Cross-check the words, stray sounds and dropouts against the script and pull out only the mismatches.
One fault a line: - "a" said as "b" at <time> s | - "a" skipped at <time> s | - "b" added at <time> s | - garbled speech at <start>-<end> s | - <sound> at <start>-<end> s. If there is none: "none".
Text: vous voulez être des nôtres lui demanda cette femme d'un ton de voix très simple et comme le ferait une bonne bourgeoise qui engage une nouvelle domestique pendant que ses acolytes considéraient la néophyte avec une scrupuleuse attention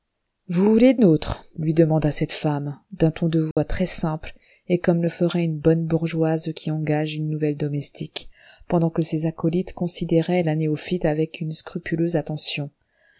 - "des" skipped at 1.0 s
- dropout at 3.5-3.6 s